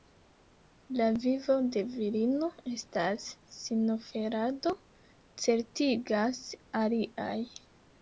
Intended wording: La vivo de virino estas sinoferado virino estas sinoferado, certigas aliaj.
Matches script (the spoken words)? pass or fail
fail